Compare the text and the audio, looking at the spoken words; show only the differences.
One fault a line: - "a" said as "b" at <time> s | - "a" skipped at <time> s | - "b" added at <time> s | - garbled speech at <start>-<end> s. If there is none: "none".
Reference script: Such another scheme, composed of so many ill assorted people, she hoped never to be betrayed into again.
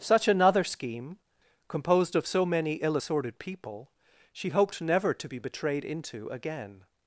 none